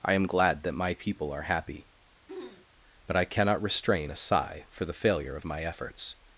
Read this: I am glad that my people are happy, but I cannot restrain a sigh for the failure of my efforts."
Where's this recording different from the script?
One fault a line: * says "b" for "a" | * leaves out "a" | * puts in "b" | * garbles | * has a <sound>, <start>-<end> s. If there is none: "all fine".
* has a throat clearing, 2.3-2.7 s